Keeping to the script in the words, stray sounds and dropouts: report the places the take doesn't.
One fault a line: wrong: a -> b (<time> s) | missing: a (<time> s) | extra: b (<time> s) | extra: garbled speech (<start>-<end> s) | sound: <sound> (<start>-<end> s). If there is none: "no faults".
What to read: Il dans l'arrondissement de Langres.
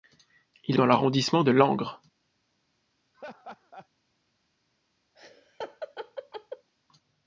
sound: laugh (3.1-3.9 s)
sound: laugh (5.1-6.7 s)